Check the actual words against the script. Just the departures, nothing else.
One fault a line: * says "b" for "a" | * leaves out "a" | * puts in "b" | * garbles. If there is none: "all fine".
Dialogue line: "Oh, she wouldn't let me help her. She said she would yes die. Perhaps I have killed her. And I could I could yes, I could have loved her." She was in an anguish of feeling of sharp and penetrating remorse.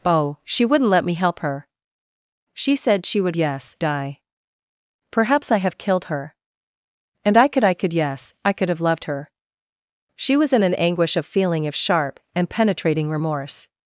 all fine